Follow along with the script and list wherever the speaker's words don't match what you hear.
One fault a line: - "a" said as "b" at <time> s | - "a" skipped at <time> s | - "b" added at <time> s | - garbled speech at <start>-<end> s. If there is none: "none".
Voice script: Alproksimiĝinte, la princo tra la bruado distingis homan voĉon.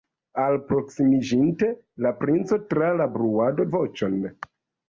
- "distingis homan" skipped at 3.7 s